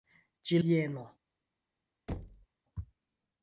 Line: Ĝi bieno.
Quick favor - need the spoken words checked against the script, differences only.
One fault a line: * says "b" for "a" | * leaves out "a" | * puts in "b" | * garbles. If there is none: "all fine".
all fine